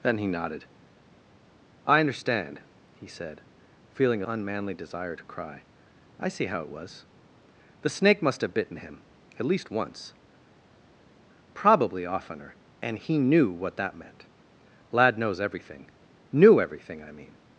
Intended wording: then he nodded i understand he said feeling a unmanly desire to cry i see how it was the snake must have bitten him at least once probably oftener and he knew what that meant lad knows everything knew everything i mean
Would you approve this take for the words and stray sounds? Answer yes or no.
yes